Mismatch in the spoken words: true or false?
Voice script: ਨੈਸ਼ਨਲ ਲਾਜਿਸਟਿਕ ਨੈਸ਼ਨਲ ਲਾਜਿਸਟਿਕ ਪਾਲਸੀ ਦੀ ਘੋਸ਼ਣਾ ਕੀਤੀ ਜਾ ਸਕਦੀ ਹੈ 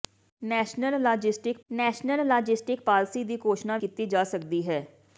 false